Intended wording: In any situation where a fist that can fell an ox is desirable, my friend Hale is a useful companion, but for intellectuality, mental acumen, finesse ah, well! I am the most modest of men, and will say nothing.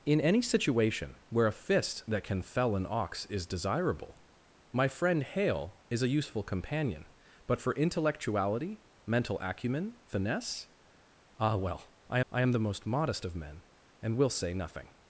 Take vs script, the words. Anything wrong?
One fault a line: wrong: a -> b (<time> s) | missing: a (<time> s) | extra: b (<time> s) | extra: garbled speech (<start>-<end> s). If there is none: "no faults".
extra: I (12.3 s)